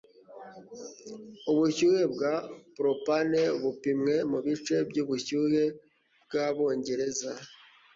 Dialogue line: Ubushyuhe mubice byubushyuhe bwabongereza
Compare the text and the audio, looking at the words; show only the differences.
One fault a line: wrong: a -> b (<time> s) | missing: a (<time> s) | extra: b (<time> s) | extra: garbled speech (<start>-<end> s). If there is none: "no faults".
extra: bwa propane bupimwe (2.1 s)